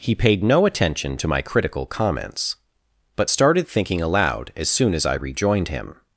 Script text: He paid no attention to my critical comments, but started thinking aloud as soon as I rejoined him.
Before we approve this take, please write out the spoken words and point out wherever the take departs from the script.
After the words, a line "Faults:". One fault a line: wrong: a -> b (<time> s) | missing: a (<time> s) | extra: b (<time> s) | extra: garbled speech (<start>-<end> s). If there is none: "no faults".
He paid no attention to my critical comments, but started thinking aloud as soon as I rejoined him.
Faults:
no faults